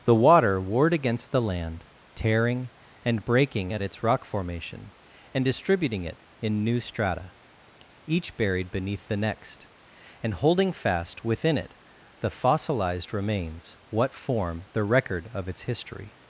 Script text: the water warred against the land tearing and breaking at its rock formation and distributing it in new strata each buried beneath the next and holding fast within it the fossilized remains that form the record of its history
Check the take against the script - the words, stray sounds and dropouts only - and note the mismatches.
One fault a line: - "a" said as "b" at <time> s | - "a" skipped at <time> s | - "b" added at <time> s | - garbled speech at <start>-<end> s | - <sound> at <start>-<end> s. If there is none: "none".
- "that" said as "what" at 13.9 s